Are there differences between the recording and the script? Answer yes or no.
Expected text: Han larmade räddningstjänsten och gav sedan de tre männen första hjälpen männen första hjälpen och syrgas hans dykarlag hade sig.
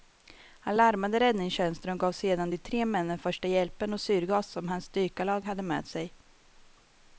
yes